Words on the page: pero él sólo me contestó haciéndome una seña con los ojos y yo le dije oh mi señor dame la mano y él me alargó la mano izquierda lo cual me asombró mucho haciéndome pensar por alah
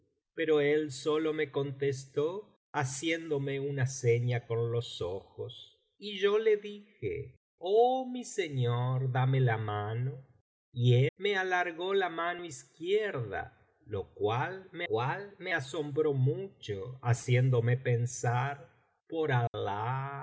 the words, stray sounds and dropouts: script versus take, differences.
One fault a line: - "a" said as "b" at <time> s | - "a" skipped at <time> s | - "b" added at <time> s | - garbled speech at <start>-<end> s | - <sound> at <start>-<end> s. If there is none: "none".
- "él" skipped at 11.1 s
- "cual me" added at 14.8 s
- dropout at 19.5-19.5 s